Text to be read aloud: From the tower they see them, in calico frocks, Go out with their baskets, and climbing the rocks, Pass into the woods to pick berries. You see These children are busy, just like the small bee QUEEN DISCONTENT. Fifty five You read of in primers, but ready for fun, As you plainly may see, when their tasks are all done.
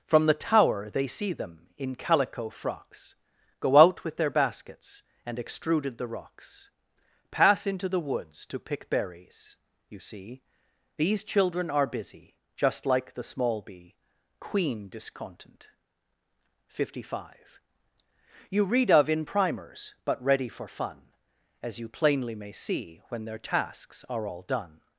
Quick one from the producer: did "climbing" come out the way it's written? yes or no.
no